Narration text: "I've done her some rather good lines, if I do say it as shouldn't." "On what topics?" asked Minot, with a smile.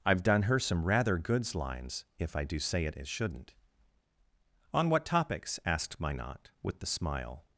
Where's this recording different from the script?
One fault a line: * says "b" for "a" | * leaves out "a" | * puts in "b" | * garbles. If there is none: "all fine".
* says "goods" for "good"
* says "the" for "a"